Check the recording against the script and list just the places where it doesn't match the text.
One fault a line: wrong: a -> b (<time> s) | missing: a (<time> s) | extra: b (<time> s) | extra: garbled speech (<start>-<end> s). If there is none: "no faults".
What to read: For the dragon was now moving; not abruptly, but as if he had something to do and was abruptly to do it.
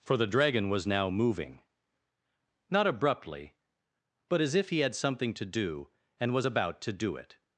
wrong: abruptly -> about (6.4 s)